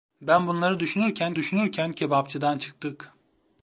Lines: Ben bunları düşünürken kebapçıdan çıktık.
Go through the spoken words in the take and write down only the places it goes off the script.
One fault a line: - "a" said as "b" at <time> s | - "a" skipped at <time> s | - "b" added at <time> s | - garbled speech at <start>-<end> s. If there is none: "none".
- "düşünürken" added at 1.3 s